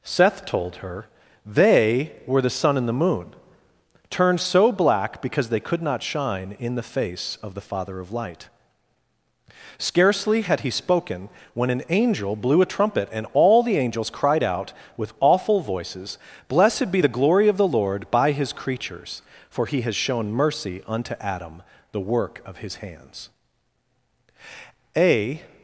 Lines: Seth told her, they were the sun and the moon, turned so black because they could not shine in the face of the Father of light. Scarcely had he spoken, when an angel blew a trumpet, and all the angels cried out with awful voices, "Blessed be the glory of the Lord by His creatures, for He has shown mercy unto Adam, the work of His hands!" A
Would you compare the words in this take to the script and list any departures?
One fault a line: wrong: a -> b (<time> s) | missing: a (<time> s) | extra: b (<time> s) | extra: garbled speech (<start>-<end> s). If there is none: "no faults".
no faults